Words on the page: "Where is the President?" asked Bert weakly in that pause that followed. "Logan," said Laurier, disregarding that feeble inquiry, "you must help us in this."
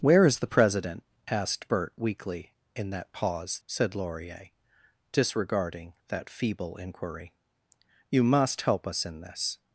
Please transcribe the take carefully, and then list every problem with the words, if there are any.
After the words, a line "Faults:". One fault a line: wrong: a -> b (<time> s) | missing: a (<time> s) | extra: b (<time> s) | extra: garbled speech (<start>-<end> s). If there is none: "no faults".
"Where is the President?" asked Bert weakly in that pause," said Laurier, disregarding that feeble inquiry, "you must help us in this."
Faults:
missing: that followed Logan (3.6 s)